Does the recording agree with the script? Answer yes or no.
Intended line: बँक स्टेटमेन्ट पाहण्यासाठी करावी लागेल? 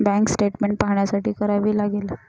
yes